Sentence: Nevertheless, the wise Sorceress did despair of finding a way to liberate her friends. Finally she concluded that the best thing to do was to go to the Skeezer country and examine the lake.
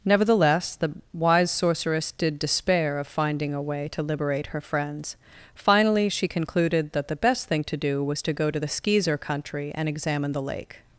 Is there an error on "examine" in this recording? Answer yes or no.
no